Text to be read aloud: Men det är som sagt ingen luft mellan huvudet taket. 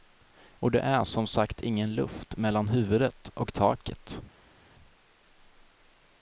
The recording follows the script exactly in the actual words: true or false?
false